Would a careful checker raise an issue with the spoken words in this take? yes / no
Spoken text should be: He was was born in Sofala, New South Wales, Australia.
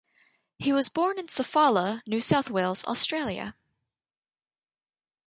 yes